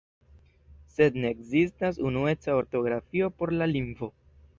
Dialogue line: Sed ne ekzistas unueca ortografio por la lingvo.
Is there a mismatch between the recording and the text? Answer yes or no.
no